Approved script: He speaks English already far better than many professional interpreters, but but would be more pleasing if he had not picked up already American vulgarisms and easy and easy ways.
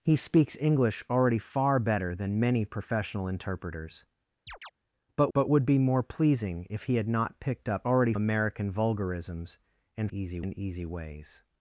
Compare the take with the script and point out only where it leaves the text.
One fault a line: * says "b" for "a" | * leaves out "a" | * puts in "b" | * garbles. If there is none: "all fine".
all fine